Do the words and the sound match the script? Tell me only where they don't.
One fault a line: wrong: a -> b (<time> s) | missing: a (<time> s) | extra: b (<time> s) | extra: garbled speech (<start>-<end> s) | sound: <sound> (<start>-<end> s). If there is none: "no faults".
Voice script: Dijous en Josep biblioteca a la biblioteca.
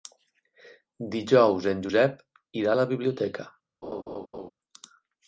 wrong: biblioteca -> irà (2.6 s)
sound: laugh (3.8-4.5 s)